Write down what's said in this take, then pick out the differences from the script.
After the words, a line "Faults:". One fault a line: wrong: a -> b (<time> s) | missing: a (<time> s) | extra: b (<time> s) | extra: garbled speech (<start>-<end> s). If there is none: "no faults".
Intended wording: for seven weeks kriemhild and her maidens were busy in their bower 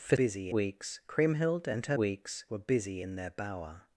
for busy weeks kriemhild and her weeks were busy in their bower
Faults:
wrong: seven -> busy (0.2 s)
wrong: maidens -> weeks (2.0 s)